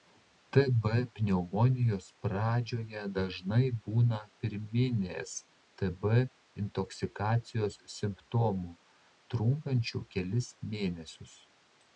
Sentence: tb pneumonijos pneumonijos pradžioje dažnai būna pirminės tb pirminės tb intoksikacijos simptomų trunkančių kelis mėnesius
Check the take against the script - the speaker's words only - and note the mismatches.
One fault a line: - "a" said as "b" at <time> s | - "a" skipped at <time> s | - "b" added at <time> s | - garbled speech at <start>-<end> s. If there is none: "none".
- "pneumonijos" skipped at 2.1 s
- "pirminės tb" skipped at 6.1 s